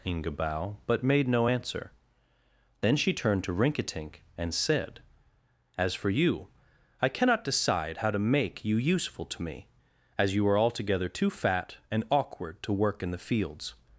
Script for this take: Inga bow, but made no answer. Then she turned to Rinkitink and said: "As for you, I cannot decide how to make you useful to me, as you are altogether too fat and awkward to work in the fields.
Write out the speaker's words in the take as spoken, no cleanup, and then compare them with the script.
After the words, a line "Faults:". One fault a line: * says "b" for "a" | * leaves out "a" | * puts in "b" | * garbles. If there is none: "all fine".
Inga bow, but made no answer. Then she turned to Rinkitink and said: "As for you, I cannot decide how to make you useful to me, as you are altogether too fat and awkward to work in the fields.
Faults:
all fine